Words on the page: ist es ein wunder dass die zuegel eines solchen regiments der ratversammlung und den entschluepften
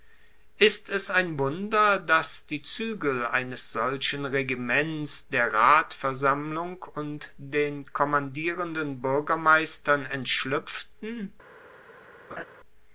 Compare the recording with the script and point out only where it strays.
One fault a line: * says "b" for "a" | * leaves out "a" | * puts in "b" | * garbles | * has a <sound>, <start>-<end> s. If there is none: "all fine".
* puts in "kommandierenden buergermeistern"
* has a laugh, 12.3-12.4 s